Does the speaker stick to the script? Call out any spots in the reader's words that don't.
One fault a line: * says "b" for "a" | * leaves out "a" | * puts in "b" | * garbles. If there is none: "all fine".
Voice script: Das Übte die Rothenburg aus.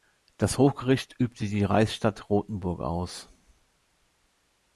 * puts in "Hochgericht"
* puts in "Reichsstadt"